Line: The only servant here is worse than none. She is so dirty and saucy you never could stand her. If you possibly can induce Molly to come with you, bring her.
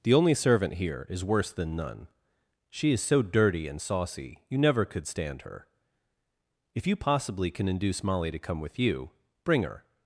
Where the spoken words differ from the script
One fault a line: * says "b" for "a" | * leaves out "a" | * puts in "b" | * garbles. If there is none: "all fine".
all fine